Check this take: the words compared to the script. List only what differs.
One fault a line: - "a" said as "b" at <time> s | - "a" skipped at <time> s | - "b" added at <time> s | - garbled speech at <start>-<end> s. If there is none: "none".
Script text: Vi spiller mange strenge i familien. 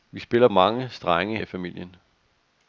none